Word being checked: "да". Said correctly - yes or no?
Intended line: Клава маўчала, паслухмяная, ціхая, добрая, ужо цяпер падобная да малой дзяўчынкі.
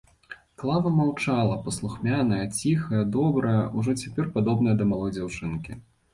yes